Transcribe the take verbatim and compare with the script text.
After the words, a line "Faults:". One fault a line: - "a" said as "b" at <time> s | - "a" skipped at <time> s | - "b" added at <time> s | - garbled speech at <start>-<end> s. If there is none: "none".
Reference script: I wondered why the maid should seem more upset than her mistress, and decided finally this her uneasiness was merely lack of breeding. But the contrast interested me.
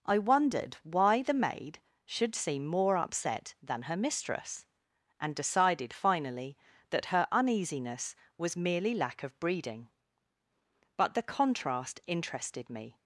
I wondered why the maid should seem more upset than her mistress, and decided finally that her uneasiness was merely lack of breeding. But the contrast interested me.
Faults:
- "this" said as "that" at 6.9 s